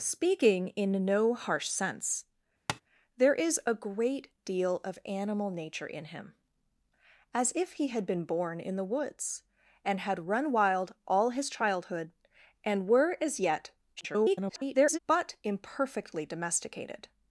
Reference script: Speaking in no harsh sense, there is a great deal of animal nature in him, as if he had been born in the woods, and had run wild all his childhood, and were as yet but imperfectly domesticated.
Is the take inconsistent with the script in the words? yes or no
yes